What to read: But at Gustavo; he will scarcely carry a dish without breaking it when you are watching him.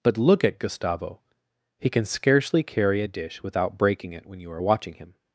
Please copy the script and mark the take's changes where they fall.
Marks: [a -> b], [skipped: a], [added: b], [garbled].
But [added: look] at Gustavo; he [will -> can] scarcely carry a dish without breaking it when you are watching him.